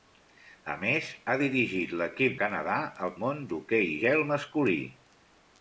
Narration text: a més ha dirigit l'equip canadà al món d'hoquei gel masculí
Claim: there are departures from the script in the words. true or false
false